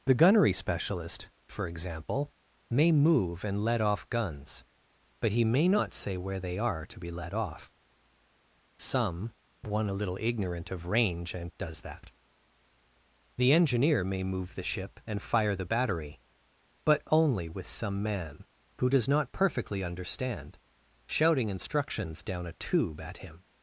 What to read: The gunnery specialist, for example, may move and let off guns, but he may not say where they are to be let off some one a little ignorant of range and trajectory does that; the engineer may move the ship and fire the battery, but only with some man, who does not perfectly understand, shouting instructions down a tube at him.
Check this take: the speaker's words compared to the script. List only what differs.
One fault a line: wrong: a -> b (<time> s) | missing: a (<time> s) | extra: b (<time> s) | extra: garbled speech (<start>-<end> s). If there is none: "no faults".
missing: trajectory (11.5 s)